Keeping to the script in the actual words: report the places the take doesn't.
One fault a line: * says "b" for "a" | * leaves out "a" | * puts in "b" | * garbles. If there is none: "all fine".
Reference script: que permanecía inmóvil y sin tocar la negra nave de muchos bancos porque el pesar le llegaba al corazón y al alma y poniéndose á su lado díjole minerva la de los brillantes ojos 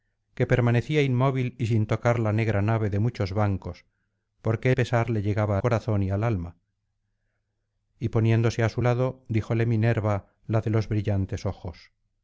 * leaves out "el"
* leaves out "al"